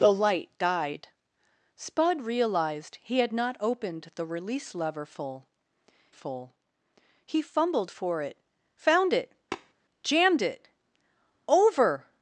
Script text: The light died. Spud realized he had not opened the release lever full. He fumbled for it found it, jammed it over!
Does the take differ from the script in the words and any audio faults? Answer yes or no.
yes